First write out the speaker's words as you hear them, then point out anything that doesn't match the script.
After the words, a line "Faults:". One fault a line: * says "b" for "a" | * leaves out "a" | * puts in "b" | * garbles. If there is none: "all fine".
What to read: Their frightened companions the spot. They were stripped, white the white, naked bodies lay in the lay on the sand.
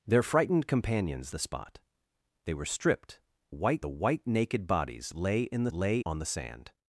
Their frightened companions the spot. They were stripped, white the white, naked bodies lay in the lay on the sand.
Faults:
all fine